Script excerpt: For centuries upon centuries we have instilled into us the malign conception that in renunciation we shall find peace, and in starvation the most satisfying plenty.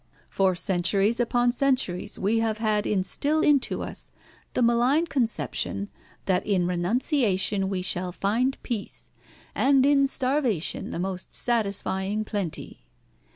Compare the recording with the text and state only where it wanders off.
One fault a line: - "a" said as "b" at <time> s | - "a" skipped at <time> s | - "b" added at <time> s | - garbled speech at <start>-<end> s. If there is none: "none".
- "had" added at 2.6 s